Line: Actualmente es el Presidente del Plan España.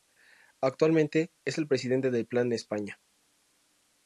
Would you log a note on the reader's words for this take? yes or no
no